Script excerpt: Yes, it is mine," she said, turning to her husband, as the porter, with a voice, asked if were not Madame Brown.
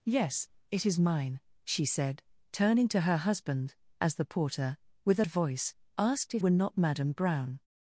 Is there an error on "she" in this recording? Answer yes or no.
no